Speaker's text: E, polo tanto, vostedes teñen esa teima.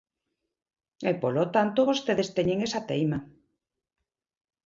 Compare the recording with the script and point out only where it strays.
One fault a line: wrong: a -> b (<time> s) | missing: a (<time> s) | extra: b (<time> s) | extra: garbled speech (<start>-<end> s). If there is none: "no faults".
no faults